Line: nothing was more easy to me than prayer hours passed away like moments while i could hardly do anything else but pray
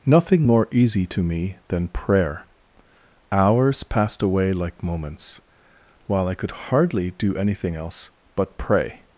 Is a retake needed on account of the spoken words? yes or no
yes